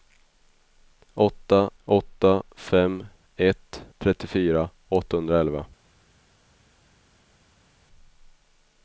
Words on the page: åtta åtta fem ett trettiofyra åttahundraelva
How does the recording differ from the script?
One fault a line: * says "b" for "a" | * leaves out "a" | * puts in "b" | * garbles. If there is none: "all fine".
all fine